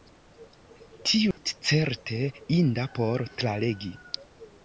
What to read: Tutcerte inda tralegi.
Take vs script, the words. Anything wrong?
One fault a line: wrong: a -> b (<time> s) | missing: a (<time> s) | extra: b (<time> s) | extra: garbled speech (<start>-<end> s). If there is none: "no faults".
extra: por (3.0 s)